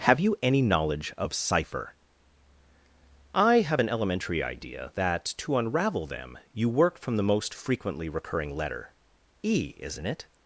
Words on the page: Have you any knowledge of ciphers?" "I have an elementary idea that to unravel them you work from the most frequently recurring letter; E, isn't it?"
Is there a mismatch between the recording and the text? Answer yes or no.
yes